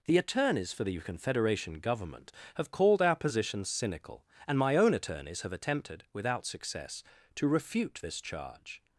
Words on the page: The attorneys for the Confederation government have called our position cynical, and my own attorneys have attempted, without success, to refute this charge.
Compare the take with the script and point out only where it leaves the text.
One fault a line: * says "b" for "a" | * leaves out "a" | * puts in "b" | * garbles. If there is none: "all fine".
all fine